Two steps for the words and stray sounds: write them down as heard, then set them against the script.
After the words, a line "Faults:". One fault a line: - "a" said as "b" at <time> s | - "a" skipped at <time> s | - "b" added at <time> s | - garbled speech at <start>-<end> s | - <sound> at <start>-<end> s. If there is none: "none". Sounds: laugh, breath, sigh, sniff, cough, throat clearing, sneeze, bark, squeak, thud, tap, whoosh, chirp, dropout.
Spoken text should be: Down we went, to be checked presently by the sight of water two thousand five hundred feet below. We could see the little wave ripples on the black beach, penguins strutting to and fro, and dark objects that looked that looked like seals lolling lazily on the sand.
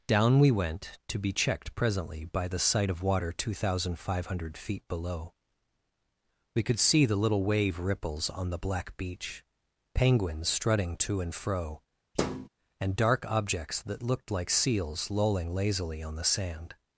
Down we went, to be checked presently by the sight of water two thousand five hundred feet below. We could see the little wave ripples on the black beach, penguins strutting to and fro, and dark objects that looked like seals lolling lazily on the sand.
Faults:
- thud at 12.2-12.5 s
- "that looked" skipped at 14.3 s